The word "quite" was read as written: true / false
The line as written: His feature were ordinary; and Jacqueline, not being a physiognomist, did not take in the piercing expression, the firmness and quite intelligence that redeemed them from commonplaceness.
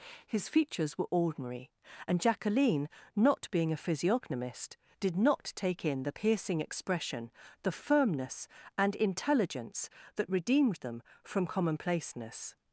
false